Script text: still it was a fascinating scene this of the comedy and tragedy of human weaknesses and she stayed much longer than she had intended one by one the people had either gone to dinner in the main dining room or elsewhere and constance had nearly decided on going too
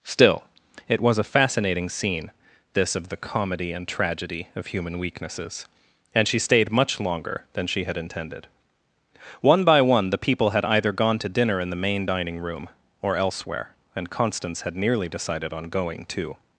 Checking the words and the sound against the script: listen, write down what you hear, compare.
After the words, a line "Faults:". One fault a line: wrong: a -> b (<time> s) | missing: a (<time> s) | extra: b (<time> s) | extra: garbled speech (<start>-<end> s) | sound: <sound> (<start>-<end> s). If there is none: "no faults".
still it was a fascinating scene this of the comedy and tragedy of human weaknesses and she stayed much longer than she had intended one by one the people had either gone to dinner in the main dining room or elsewhere and constance had nearly decided on going too
Faults:
no faults